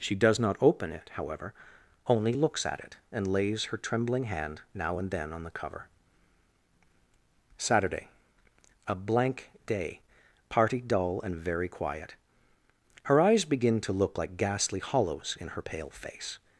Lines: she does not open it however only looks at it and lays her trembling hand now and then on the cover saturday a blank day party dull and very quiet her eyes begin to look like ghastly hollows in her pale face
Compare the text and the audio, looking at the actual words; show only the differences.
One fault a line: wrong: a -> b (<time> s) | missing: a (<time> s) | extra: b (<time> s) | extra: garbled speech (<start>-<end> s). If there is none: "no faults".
no faults